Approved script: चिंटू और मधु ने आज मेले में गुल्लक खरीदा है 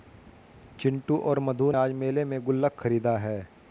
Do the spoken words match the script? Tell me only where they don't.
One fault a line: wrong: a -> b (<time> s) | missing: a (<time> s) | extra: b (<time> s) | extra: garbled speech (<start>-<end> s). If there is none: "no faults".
missing: ने (1.7 s)